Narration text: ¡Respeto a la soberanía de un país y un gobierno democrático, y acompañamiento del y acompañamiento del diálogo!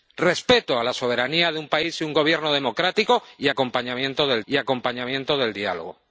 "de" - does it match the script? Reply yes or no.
yes